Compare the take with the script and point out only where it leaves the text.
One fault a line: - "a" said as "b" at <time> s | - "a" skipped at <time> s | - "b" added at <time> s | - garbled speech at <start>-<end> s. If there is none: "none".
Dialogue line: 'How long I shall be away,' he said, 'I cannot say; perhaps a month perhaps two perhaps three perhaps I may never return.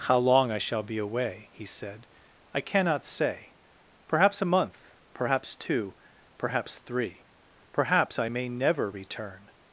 none